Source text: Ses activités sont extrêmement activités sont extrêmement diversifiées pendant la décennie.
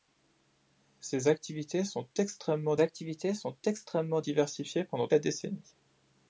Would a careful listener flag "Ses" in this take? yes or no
no